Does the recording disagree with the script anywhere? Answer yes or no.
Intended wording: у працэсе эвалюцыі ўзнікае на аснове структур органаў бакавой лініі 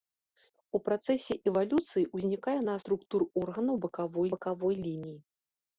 yes